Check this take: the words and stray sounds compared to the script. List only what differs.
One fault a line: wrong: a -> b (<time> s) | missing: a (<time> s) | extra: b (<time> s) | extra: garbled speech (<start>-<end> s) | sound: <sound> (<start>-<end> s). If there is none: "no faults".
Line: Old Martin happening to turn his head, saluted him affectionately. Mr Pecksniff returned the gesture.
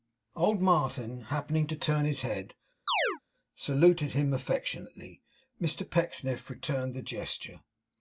sound: chirp (2.9-3.2 s)